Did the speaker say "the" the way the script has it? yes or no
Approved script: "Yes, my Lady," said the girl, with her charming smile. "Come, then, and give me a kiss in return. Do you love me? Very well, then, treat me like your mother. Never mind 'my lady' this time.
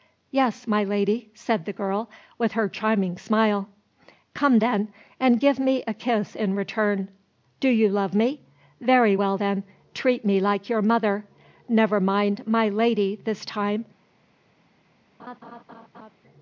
yes